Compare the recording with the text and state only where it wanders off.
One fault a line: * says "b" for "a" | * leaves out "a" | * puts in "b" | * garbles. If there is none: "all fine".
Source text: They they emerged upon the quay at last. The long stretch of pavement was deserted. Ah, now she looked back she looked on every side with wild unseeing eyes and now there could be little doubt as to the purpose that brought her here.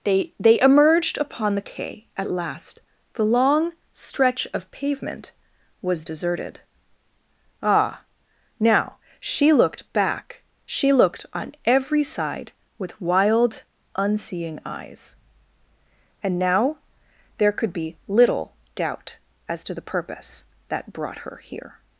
all fine